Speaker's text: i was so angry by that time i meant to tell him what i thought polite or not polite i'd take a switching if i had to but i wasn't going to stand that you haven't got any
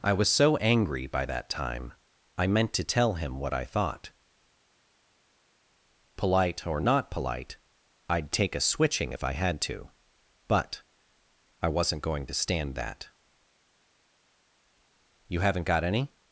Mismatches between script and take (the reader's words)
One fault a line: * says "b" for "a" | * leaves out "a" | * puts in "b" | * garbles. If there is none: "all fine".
all fine